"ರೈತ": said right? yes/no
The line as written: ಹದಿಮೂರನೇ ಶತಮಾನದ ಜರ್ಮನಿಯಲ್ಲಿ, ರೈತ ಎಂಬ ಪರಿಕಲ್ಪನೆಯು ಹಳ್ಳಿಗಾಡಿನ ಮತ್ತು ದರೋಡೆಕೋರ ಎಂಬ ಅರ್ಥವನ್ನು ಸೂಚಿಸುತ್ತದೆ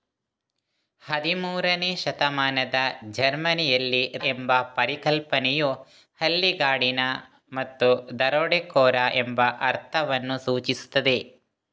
no